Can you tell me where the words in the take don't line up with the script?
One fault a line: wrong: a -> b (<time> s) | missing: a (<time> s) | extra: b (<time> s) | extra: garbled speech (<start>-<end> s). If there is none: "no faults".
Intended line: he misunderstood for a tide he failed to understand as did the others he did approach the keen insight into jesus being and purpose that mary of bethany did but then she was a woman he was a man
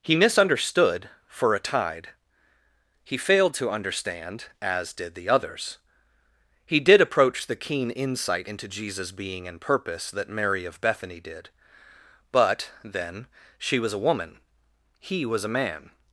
no faults